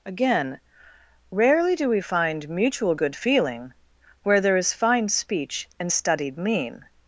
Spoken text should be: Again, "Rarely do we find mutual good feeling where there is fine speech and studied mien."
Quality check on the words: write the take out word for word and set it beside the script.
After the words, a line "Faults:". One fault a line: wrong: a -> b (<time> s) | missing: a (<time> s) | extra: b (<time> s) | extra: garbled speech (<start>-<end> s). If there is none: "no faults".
Again, "Rarely do we find mutual good feeling where there is fine speech and studied mien."
Faults:
no faults